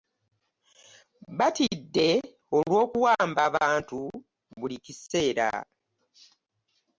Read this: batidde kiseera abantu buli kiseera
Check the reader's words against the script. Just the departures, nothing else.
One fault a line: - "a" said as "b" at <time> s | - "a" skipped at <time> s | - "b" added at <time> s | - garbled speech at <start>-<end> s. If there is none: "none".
- "kiseera" said as "olw'okuwamba" at 2.6 s